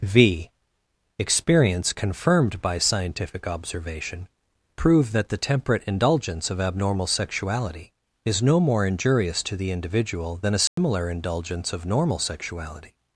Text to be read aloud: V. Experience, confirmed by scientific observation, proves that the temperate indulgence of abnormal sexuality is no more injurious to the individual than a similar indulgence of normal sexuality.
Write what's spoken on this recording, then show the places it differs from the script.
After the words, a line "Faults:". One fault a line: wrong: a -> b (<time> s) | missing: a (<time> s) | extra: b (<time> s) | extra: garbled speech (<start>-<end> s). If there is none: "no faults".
V. Experience, confirmed by scientific observation, prove that the temperate indulgence of abnormal sexuality is no more injurious to the individual than a similar indulgence of normal sexuality.
Faults:
wrong: proves -> prove (4.8 s)